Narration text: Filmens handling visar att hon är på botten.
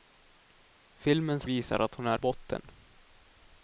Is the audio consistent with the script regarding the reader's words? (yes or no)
no